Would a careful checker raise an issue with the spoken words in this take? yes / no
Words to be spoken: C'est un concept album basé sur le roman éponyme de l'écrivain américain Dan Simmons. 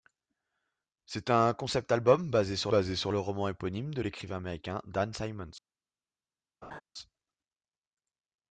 yes